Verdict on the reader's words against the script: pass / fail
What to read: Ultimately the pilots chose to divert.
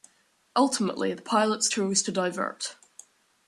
pass